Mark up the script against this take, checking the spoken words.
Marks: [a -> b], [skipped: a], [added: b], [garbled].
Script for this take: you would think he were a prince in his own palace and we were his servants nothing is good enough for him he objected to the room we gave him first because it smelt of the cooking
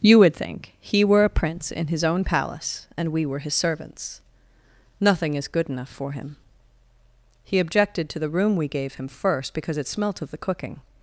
you would think he were a prince in his own palace and we were his servants nothing is good enough for him he objected to the room we gave him first because it smelt of the cooking